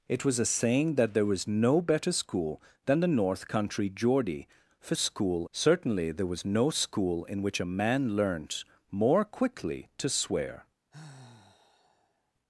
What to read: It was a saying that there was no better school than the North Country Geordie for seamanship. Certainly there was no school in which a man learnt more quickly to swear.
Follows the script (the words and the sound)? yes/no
no